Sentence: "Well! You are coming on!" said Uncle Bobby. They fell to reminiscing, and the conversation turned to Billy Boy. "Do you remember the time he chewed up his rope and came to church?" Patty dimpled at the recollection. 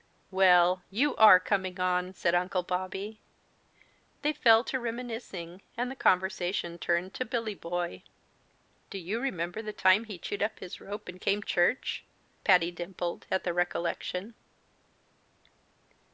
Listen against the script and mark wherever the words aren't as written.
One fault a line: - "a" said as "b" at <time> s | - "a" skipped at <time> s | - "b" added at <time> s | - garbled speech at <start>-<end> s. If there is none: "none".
- "to" skipped at 11.4 s